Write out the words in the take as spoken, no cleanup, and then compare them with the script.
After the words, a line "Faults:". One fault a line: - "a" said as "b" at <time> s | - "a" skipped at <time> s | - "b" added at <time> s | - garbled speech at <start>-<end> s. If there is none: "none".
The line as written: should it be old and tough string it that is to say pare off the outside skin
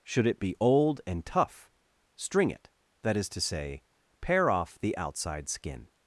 should it be old and tough string it that is to say pare off the outside skin
Faults:
none